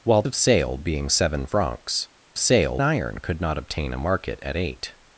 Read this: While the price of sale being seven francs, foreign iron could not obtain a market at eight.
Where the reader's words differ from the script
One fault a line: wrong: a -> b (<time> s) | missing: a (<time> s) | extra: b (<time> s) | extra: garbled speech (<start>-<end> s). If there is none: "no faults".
missing: the price (0.2 s)
wrong: foreign -> sale (2.4 s)